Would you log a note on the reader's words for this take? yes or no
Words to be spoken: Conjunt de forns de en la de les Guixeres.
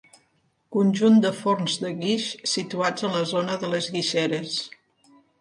yes